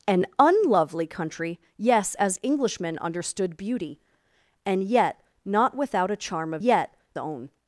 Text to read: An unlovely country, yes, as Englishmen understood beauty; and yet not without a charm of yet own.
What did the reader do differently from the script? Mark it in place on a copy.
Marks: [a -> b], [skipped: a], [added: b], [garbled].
An unlovely country, yes, as Englishmen understood beauty; and yet not without a charm of yet own.